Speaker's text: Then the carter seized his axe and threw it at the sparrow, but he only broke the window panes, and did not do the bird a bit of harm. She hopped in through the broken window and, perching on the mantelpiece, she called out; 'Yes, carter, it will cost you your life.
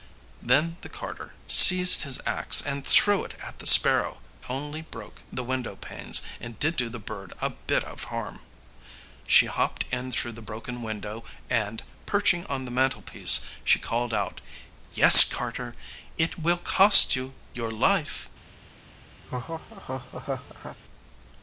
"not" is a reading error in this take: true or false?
true